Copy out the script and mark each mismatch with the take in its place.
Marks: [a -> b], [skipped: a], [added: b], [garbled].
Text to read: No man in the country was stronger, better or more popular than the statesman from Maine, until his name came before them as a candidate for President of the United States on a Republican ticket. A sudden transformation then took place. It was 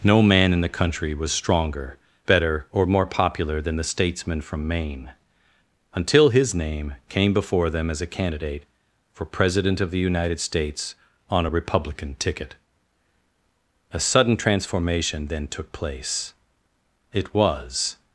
No man in the country was stronger, better or more popular than the statesman from Maine, until his name came before them as a candidate for President of the United States on a Republican ticket. A sudden transformation then took place. It was